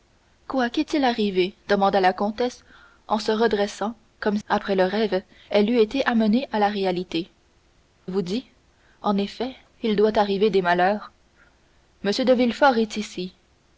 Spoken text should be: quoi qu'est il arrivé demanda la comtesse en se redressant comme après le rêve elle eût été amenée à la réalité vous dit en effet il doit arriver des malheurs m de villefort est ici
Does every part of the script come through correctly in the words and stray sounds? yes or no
yes